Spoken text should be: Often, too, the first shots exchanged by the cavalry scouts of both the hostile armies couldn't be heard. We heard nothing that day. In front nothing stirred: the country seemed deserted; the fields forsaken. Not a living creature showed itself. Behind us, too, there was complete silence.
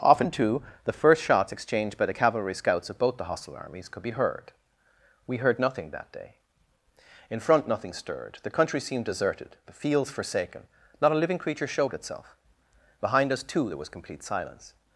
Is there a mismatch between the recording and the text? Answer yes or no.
yes